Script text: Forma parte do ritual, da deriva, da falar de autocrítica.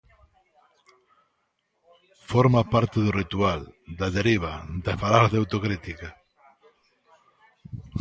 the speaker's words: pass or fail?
pass